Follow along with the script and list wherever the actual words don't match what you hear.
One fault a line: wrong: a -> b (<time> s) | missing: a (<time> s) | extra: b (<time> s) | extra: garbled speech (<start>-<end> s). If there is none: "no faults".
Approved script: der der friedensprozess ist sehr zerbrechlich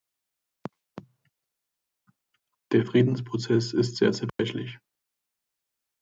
missing: der (2.9 s)